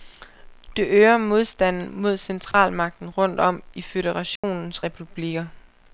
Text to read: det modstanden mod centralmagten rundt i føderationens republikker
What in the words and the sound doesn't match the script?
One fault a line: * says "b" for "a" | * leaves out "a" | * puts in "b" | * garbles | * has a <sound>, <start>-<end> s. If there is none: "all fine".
* puts in "øger"
* has a dropout, 2.5-2.5 s
* puts in "om"
* has a dropout, 4.4-4.4 s